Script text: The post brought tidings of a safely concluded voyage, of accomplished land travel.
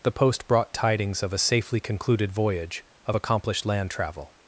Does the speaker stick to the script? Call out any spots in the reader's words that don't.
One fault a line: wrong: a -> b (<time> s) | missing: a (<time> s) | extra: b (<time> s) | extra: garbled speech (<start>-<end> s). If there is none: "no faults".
no faults